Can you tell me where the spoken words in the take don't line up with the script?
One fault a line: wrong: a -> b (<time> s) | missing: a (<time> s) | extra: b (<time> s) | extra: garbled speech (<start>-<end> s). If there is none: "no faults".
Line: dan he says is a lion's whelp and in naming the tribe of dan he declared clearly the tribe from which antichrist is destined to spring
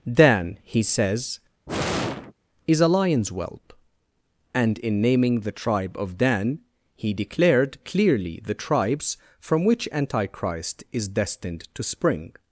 wrong: tribe -> tribes (8.5 s)